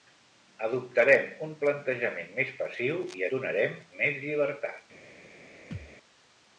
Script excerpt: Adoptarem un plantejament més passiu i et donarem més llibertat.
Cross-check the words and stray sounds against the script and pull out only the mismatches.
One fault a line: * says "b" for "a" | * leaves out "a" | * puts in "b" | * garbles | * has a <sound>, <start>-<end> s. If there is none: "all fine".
* leaves out "et"
* has a thud, 5.7-6.0 s